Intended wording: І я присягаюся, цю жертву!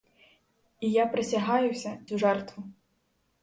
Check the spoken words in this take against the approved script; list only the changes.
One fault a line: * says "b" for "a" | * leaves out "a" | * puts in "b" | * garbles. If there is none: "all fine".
all fine